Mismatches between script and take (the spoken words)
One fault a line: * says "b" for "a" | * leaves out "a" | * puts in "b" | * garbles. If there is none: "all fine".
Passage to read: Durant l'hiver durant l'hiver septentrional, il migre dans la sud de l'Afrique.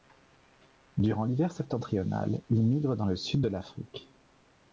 * leaves out "durant l'hiver"
* says "le" for "la"